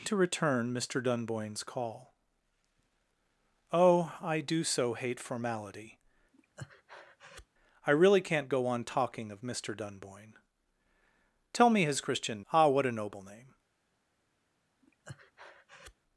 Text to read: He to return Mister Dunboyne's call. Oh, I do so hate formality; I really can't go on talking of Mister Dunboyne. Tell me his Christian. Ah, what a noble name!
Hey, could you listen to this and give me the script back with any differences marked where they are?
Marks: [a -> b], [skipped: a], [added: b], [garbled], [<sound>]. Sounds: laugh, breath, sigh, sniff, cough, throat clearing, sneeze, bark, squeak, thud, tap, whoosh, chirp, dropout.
He to return Mister Dunboyne's call. Oh, I do so hate formality; [breath] I really can't go on talking of Mister Dunboyne. Tell me his Christian. Ah, what a noble name! [breath]